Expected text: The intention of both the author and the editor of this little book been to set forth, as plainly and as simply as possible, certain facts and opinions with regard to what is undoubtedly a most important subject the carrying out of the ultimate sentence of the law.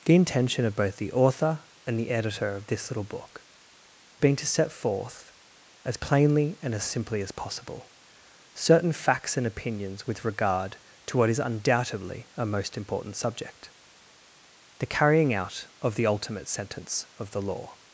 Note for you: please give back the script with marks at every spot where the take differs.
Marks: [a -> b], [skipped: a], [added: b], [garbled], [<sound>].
The intention of both the author and the editor of this little book been to set forth, as plainly and as simply as possible, certain facts and opinions with regard to what is undoubtedly a most important subject the carrying out of the ultimate sentence of the law.